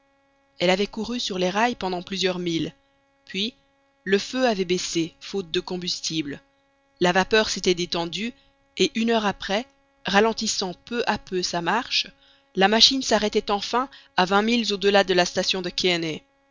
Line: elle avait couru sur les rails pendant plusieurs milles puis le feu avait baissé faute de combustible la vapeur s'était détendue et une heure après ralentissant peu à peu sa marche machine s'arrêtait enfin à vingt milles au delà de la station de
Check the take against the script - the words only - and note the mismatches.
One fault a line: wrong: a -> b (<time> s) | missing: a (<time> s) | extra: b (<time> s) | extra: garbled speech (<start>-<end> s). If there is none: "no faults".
extra: la (12.6 s)